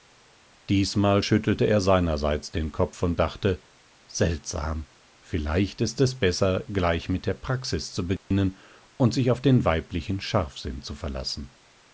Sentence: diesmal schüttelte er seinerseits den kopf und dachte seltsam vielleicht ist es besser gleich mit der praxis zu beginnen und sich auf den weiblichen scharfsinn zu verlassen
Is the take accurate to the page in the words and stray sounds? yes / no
no